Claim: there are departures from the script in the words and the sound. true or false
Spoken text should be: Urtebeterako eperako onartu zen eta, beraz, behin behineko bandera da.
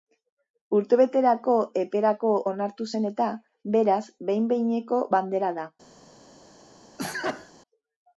true